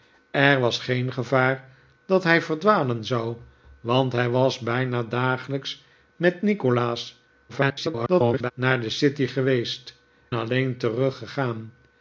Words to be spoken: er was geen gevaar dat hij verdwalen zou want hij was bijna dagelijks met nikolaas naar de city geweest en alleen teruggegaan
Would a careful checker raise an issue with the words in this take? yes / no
yes